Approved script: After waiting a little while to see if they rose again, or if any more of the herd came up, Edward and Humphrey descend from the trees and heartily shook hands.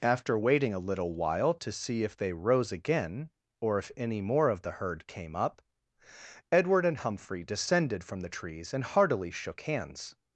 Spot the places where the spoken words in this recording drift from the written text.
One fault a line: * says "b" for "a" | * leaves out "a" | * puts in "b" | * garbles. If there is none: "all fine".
* says "descended" for "descend"